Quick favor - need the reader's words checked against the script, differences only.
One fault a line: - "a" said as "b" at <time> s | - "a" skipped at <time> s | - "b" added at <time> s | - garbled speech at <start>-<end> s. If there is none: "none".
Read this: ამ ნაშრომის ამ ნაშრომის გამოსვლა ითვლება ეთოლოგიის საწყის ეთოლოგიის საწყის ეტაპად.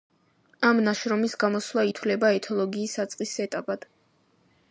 - "ამ ნაშრომის" skipped at 1.4 s
- "ეთოლოგიის საწყის" skipped at 3.3 s